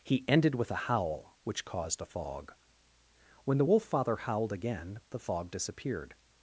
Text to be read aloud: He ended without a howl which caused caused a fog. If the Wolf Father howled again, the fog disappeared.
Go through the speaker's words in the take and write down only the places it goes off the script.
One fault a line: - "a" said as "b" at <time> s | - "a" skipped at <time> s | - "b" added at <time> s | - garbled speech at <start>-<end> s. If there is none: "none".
- "without" said as "with" at 0.6 s
- "caused" skipped at 2.0 s
- "If" said as "When" at 3.5 s